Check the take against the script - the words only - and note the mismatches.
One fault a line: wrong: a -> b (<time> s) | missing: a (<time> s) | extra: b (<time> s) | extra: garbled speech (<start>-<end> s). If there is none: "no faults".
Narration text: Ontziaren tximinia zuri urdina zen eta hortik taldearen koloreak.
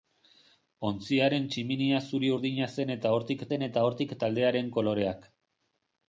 extra: zen eta hortik (3.5 s)